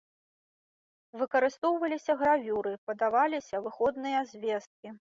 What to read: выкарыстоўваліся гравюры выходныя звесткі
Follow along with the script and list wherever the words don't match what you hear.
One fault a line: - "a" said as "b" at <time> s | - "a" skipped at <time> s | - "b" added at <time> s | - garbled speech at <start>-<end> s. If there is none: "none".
- "падаваліся" added at 2.9 s